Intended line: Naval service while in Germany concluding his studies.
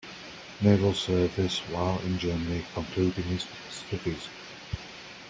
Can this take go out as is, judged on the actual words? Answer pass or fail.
pass